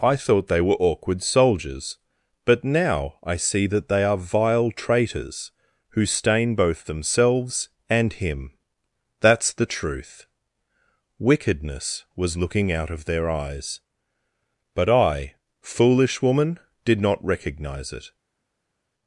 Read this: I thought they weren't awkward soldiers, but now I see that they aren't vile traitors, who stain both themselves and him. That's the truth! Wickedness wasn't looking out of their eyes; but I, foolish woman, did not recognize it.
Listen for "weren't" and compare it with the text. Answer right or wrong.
wrong